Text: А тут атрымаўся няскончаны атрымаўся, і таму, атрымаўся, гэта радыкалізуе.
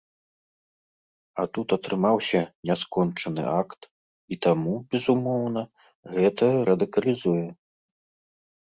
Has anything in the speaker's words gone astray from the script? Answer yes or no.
yes